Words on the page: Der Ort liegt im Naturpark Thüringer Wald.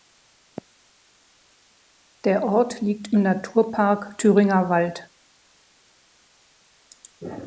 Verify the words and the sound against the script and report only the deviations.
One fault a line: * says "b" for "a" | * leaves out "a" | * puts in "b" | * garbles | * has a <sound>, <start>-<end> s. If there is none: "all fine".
all fine